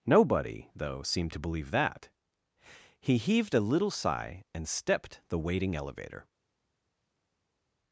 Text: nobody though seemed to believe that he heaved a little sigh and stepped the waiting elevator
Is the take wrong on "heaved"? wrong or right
right